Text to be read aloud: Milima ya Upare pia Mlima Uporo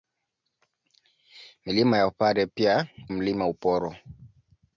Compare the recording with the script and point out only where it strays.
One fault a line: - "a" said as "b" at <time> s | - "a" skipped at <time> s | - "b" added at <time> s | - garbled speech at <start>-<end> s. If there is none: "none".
none